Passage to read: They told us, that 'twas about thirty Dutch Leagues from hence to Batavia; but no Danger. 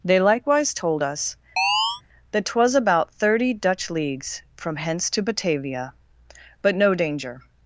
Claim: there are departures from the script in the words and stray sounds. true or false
true